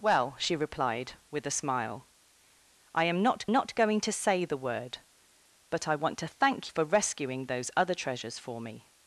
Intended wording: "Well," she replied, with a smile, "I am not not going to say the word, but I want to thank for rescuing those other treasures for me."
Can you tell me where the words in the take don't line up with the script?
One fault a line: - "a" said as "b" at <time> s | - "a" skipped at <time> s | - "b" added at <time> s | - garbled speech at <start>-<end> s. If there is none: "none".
none